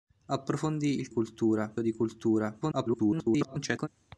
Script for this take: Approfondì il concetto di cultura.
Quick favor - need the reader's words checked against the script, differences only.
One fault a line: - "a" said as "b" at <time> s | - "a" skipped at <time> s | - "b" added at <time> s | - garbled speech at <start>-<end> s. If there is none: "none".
- "concetto" said as "cultura" at 1.1 s
- garbled speech at 2.6-3.9 s